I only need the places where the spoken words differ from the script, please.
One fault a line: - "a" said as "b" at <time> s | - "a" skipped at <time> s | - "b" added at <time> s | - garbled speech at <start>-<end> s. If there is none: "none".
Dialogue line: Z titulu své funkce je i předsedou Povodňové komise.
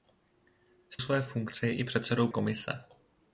- "titulu" skipped at 1.0 s
- "Povodňové" skipped at 2.3 s